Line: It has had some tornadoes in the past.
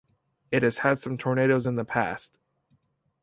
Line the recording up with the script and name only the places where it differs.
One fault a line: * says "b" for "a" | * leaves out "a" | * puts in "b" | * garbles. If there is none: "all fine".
all fine